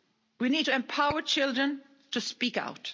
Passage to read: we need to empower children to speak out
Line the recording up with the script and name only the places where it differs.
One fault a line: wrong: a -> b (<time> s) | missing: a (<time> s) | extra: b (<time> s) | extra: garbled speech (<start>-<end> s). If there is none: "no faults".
no faults